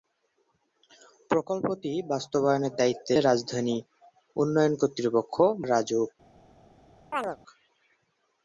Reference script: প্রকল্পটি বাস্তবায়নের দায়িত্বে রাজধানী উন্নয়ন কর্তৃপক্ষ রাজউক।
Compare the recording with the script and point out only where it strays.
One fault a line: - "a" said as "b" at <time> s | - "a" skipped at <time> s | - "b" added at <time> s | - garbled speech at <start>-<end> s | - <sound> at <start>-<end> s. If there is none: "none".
- chirp at 7.1-7.4 s